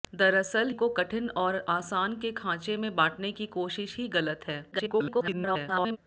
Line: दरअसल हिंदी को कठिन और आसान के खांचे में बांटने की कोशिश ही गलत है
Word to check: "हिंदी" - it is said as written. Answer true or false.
false